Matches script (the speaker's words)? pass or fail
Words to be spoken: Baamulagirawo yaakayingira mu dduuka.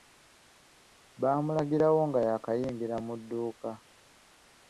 fail